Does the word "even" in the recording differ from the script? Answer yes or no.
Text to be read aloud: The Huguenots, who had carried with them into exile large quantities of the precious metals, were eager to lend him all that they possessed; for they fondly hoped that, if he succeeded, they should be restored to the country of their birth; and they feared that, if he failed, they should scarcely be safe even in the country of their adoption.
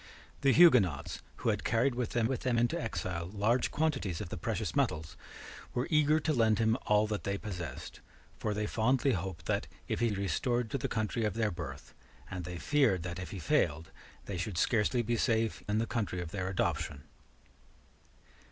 yes